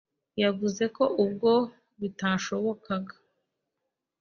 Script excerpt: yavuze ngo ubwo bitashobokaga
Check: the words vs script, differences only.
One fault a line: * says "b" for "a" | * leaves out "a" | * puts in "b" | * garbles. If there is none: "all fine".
* says "ko" for "ngo"